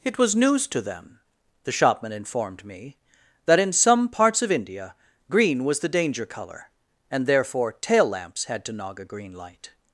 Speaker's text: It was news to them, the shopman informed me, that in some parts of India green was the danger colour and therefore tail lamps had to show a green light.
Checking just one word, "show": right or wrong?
wrong